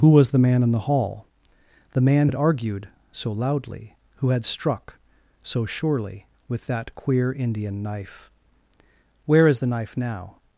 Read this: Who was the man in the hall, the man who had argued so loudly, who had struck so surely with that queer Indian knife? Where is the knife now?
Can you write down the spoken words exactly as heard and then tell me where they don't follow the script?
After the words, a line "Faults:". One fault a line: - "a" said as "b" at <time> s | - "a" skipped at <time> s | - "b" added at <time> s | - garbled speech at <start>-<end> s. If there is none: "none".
Who was the man in the hall, the man had argued so loudly, who had struck so surely with that queer Indian knife? Where is the knife now?
Faults:
- "who" skipped at 2.3 s